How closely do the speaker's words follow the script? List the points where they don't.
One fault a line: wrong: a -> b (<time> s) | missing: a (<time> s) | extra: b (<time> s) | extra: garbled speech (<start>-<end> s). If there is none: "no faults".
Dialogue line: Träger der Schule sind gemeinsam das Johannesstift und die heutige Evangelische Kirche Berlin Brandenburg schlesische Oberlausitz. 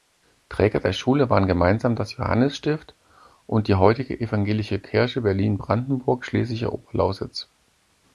wrong: sind -> waren (1.3 s)